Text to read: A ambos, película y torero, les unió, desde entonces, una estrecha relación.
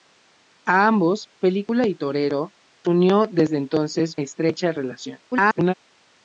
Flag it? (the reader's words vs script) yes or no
yes